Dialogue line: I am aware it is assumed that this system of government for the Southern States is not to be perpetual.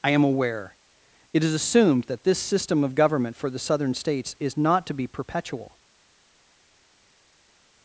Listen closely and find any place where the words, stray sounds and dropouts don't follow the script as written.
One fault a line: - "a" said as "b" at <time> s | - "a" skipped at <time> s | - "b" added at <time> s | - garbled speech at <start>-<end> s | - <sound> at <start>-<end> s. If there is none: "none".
none